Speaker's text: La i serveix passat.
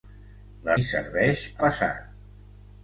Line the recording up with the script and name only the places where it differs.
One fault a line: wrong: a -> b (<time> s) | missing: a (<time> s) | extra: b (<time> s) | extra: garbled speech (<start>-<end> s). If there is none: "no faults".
no faults